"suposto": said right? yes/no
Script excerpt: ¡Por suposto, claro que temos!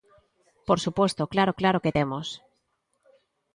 yes